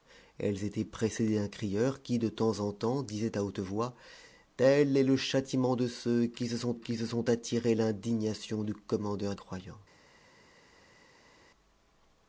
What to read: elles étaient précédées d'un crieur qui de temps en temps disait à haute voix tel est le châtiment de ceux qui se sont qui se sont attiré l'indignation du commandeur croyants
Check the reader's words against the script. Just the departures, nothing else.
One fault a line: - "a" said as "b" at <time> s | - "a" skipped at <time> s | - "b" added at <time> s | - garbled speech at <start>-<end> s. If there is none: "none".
none